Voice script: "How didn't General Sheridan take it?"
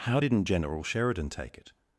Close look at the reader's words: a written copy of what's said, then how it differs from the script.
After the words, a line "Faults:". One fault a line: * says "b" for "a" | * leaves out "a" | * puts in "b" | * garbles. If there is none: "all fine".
"How didn't General Sheridan take it?"
Faults:
all fine